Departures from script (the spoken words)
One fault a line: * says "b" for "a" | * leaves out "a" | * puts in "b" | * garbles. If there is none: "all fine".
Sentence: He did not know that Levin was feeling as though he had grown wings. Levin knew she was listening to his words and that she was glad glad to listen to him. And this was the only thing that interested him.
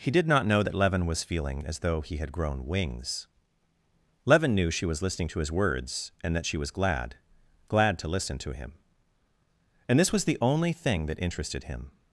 all fine